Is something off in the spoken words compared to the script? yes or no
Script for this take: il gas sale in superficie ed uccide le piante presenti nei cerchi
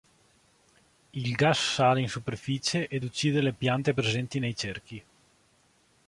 no